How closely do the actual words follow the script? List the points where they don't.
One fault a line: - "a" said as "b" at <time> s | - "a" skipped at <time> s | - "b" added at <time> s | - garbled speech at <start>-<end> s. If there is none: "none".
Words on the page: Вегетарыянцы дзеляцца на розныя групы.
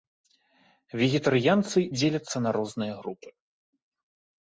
none